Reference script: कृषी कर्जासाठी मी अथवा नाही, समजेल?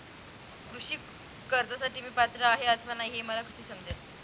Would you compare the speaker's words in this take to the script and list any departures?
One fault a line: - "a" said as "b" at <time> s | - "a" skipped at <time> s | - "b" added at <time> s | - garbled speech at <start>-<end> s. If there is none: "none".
- "पात्र आहे" added at 2.2 s
- "हे मला कसे" added at 3.1 s